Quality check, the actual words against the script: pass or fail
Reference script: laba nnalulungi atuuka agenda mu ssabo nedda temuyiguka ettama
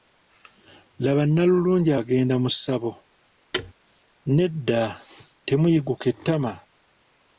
fail